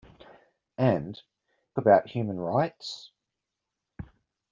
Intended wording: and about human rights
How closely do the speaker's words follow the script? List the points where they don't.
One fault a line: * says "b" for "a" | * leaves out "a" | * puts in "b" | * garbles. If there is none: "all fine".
all fine